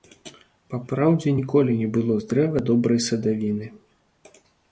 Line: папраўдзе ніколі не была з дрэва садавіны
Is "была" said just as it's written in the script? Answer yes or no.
no